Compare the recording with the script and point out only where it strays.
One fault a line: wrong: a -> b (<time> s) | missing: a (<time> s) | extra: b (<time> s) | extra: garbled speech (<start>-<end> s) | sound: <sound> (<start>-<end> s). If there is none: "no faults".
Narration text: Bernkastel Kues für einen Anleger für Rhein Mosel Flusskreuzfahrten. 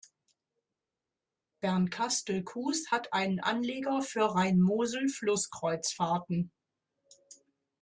wrong: für -> hat (2.9 s)